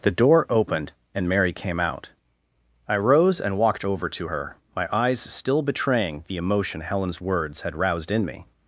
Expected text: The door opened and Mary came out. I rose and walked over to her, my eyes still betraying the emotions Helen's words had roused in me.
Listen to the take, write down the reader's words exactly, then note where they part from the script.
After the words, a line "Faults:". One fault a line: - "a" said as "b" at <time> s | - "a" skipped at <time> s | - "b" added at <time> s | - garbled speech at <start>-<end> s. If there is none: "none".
The door opened and Mary came out. I rose and walked over to her, my eyes still betraying the emotion Helen's words had roused in me.
Faults:
- "emotions" said as "emotion" at 6.4 s